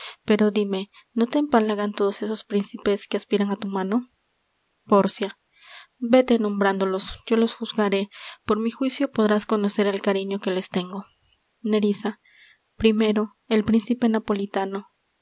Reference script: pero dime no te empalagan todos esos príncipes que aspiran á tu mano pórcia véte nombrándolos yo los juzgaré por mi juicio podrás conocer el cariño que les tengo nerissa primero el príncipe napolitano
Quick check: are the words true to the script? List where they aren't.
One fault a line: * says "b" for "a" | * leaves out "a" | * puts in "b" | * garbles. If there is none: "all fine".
all fine